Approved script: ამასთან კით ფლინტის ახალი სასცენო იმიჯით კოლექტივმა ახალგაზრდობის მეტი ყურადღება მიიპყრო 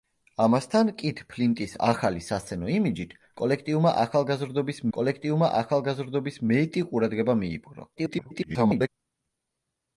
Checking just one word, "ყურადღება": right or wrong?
right